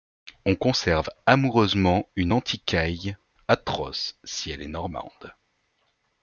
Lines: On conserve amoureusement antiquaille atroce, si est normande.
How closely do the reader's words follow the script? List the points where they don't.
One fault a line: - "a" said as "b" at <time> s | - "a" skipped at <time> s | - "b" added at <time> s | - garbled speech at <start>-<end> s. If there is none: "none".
- "une" added at 2.1 s
- "elle" added at 4.5 s